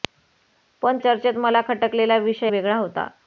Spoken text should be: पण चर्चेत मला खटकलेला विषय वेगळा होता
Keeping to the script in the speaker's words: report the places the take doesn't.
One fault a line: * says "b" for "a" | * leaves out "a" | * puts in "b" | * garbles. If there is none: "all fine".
all fine